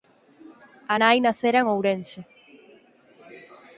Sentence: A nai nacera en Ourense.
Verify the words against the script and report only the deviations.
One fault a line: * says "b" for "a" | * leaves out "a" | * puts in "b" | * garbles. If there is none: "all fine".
all fine